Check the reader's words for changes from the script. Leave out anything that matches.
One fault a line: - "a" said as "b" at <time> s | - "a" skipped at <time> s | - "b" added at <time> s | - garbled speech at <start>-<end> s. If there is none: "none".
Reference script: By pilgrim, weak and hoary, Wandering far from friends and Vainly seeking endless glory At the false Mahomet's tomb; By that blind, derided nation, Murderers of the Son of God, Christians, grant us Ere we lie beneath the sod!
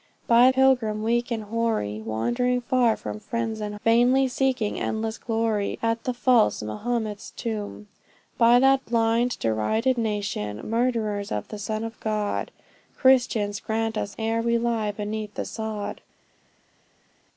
none